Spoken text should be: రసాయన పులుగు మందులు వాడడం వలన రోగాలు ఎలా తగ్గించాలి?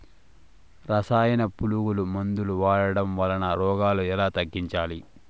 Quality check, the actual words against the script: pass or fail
pass